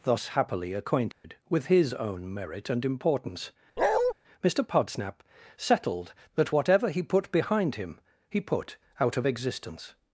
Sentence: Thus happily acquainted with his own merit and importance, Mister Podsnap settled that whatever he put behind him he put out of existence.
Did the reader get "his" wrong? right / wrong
right